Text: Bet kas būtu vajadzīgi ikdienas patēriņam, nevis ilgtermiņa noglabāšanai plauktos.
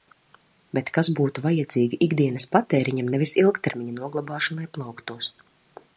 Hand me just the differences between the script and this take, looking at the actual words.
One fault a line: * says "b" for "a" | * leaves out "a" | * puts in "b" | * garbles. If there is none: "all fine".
all fine